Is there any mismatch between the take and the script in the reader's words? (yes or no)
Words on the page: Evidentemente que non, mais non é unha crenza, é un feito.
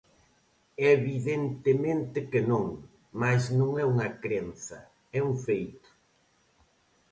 no